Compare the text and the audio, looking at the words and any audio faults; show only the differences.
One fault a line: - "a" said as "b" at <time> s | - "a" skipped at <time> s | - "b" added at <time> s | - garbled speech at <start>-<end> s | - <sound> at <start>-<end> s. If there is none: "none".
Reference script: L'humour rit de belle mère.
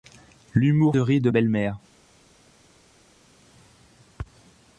none